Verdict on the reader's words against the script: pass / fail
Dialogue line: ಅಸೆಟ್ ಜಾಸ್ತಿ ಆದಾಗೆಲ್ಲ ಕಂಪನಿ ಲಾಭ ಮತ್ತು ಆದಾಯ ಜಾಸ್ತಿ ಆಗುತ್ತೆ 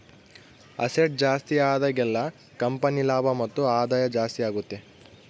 pass